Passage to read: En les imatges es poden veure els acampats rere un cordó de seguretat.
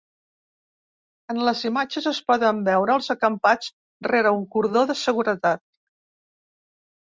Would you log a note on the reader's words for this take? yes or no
no